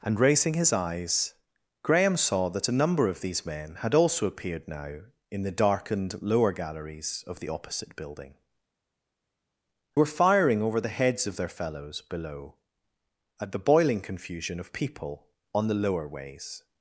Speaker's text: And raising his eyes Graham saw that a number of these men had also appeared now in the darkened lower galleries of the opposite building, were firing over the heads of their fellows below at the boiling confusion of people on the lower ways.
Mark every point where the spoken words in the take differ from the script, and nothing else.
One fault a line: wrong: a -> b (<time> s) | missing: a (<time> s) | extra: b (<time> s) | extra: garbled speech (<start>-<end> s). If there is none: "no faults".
no faults